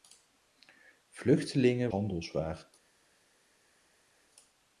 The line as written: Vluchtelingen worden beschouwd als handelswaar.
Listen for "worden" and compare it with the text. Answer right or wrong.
wrong